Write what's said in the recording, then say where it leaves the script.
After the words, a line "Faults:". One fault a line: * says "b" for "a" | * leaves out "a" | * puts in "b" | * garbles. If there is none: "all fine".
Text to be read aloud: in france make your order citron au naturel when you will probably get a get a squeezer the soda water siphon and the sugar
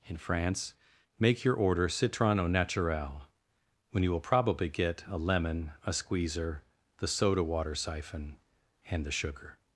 in france make your order citron au naturel when you will probably get a lemon a squeezer the soda water siphon and the sugar
Faults:
* says "lemon" for "get"